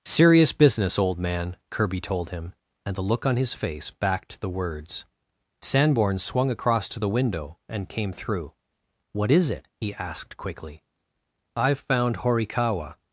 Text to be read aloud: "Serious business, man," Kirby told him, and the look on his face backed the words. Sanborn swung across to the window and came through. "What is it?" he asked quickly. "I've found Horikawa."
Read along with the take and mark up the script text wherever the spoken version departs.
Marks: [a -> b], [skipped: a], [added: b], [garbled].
"Serious business, [added: old] man," Kirby told him, and the look on his face backed the words. Sanborn swung across to the window and came through. "What is it?" he asked quickly. "I've found Horikawa."